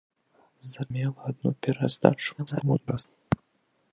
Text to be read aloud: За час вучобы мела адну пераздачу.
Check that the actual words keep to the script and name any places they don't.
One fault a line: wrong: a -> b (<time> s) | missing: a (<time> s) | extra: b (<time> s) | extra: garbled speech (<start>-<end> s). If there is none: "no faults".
missing: час вучобы (0.8 s)
extra: garbled speech (2.4-3.0 s)